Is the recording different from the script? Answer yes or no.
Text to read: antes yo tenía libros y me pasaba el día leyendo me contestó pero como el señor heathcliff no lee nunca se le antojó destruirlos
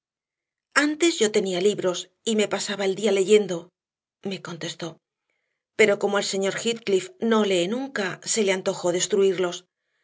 no